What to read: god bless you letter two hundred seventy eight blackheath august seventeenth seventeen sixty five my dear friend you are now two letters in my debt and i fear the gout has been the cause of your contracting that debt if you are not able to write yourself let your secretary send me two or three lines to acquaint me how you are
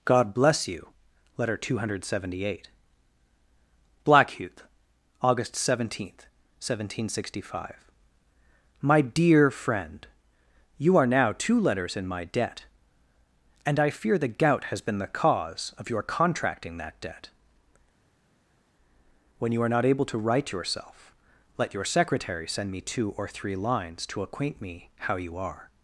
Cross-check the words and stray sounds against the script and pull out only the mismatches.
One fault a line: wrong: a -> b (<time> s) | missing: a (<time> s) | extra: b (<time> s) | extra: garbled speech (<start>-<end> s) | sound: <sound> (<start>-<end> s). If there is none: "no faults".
wrong: if -> when (19.4 s)